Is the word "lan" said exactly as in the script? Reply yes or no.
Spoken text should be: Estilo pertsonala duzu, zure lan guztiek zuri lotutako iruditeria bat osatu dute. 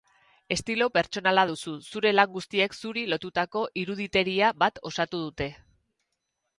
yes